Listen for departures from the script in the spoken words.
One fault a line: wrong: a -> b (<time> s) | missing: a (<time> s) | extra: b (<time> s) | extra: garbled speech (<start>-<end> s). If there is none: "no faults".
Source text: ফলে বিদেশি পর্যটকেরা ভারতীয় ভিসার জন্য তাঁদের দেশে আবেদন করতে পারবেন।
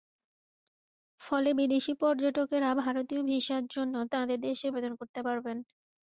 no faults